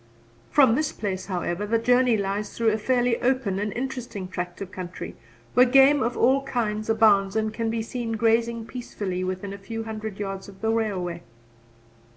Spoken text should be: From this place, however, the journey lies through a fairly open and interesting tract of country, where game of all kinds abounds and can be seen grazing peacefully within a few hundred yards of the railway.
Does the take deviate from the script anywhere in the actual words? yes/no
no